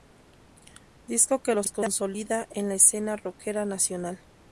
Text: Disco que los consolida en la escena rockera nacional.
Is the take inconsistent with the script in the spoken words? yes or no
no